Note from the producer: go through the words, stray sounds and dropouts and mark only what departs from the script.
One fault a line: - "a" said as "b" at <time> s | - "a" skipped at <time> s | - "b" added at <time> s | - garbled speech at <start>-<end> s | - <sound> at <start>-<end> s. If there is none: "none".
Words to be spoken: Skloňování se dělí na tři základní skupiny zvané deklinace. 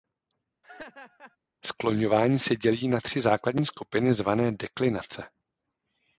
- laugh at 0.6-1.4 s